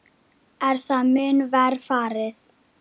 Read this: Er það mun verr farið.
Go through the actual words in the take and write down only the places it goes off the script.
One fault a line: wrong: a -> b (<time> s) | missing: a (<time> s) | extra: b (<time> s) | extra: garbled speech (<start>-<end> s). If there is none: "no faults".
no faults